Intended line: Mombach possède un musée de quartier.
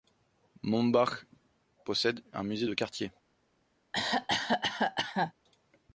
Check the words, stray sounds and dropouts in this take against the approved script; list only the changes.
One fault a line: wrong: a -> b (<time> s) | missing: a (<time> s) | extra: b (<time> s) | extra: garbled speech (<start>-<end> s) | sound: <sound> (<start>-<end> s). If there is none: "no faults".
sound: cough (3.9-5.3 s)